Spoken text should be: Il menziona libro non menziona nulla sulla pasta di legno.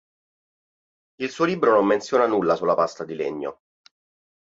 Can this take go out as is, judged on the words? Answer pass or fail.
fail